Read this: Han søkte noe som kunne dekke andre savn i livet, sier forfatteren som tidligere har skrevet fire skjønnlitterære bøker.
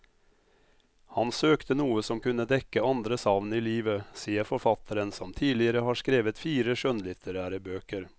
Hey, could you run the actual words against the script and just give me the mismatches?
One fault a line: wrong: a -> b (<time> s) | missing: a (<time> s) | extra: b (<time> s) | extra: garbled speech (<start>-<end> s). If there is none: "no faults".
no faults